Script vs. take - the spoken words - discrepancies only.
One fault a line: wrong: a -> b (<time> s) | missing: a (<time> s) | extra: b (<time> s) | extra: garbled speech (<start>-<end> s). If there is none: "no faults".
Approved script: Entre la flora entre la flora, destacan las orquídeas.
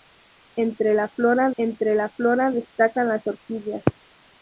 no faults